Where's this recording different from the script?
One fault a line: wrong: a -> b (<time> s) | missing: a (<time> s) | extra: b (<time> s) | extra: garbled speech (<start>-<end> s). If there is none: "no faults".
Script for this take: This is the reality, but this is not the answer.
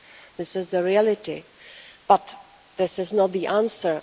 no faults